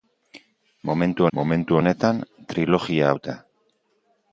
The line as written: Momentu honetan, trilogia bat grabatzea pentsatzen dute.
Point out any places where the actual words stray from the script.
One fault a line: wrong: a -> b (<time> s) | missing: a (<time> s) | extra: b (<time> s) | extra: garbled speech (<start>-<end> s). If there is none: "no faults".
extra: momentu (1.4 s)
missing: bat grabatzea pentsatzen (3.1 s)